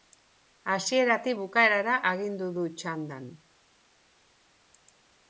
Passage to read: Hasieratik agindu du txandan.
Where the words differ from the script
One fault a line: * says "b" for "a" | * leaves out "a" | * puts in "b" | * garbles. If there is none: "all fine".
* puts in "bukaerara"